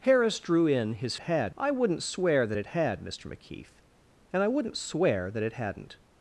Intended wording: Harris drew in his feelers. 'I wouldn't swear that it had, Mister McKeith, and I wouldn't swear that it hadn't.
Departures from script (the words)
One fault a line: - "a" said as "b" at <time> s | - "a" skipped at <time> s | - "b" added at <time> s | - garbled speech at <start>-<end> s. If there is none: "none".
- "feelers" said as "had" at 1.2 s